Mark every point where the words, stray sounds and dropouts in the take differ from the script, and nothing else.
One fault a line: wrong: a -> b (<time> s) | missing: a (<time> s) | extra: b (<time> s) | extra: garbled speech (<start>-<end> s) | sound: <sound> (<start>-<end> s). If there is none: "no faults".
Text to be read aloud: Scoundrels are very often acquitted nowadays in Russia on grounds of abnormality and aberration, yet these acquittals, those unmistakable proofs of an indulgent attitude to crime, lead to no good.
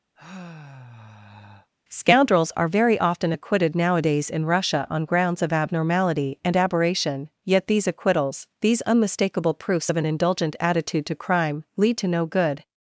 sound: sigh (0.2-1.7 s)
wrong: those -> these (8.6 s)